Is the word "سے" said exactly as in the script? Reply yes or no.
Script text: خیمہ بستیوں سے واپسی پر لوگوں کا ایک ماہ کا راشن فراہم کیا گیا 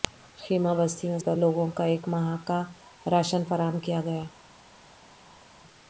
no